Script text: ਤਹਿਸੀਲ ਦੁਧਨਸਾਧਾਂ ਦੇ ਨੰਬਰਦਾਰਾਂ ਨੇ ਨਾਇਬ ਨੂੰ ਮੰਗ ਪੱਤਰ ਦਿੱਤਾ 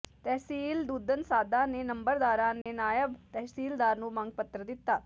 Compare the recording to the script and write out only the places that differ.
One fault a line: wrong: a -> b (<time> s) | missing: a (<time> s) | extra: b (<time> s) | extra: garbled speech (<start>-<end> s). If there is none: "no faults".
extra: ਤਹਿਸੀਲਦਾਰ (3.3 s)